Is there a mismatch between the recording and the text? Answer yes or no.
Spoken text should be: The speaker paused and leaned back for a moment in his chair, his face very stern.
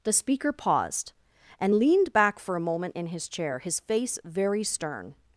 no